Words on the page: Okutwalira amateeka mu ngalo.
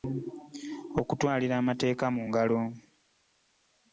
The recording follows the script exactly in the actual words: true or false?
true